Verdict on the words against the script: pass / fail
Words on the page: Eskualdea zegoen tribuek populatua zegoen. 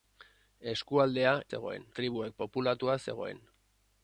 pass